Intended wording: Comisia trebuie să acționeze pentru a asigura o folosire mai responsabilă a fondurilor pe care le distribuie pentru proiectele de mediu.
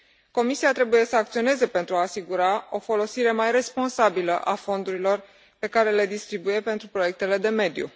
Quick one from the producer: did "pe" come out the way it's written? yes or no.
yes